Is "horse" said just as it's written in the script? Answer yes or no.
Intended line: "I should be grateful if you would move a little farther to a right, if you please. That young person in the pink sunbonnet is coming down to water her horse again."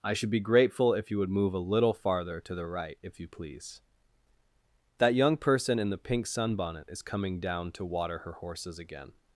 no